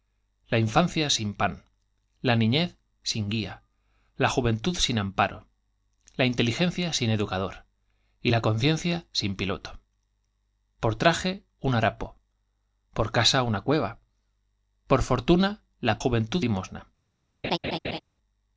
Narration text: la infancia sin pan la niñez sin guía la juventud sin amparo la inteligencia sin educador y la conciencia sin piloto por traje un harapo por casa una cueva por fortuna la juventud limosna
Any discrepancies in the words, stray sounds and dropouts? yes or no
yes